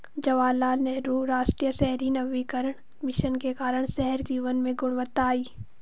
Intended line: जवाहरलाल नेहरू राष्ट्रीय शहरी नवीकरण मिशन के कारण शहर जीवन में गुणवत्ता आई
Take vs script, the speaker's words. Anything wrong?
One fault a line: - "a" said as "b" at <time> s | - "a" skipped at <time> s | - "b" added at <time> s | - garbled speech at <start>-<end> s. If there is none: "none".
none